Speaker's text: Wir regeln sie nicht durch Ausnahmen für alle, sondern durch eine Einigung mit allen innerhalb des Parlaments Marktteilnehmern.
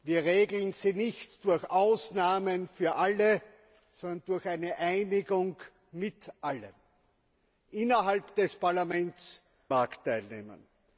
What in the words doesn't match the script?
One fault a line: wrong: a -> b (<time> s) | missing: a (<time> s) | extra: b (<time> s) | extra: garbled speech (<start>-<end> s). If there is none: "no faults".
no faults